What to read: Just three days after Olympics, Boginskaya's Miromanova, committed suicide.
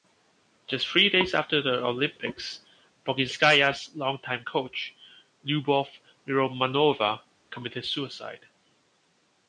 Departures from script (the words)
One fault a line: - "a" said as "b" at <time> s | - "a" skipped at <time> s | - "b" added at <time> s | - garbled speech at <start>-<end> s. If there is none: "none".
- "the" added at 1.6 s
- "longtime coach Lyubov" added at 4.0 s